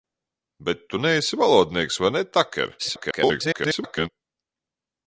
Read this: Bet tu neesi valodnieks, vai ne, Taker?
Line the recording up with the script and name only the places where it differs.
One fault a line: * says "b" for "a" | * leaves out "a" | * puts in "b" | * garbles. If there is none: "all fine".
* garbles